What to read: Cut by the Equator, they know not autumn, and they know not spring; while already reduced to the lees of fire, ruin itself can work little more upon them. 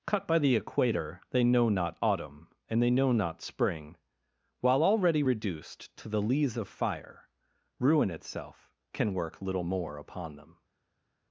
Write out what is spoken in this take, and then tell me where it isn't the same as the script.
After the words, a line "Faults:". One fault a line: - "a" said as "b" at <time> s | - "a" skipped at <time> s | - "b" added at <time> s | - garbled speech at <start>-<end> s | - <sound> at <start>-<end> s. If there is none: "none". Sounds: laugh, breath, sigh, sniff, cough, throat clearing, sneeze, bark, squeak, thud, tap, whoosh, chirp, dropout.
Cut by the Equator, they know not autumn, and they know not spring; while already reduced to the lees of fire, ruin itself can work little more upon them.
Faults:
none